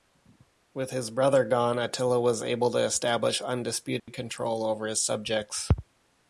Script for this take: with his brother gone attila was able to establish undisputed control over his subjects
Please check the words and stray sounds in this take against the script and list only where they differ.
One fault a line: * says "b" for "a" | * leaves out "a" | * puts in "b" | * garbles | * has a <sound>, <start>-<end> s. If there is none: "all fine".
* has a dropout, 4.0-4.1 s